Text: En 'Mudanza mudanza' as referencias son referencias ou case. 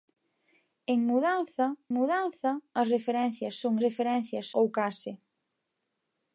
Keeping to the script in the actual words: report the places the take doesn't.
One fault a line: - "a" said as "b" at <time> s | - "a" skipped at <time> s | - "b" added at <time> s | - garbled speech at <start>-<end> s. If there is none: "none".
none